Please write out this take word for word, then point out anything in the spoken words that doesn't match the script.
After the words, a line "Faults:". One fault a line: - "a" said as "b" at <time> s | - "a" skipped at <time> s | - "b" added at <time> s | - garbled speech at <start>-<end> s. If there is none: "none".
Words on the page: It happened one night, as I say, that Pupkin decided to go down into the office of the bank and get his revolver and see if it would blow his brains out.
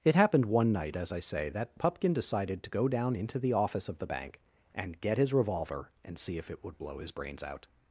It happened one night, as I say, that Pupkin decided to go down into the office of the bank and get his revolver and see if it would blow his brains out.
Faults:
none